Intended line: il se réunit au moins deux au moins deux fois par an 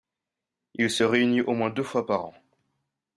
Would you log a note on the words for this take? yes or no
yes